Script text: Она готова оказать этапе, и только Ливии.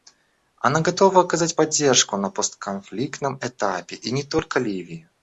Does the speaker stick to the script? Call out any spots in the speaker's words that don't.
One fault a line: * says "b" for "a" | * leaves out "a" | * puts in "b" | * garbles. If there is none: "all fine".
* puts in "поддержку на постконфликтном"
* puts in "не"